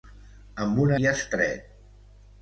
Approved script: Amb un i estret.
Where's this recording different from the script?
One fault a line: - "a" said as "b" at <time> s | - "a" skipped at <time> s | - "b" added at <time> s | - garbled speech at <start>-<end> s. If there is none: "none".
none